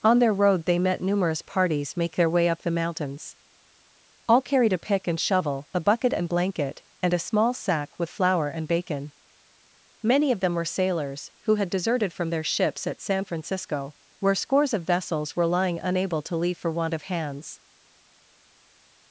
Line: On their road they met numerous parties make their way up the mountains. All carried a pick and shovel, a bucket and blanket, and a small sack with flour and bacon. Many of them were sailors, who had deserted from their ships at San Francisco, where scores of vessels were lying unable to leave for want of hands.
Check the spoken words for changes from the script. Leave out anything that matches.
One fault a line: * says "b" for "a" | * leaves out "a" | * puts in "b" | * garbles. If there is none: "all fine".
all fine